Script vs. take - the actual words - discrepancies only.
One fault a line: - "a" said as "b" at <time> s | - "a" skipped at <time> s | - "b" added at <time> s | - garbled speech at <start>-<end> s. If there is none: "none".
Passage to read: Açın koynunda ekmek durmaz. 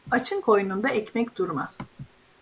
none